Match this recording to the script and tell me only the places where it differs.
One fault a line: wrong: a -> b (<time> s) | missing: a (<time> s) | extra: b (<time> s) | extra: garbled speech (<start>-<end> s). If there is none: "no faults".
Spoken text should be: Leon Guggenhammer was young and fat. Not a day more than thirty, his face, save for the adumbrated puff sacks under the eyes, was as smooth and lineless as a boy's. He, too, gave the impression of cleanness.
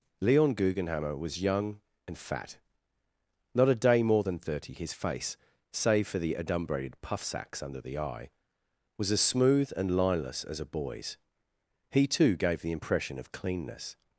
wrong: eyes -> eye (8.0 s)